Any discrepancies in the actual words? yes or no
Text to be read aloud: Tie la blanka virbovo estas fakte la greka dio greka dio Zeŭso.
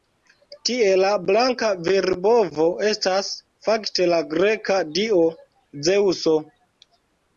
yes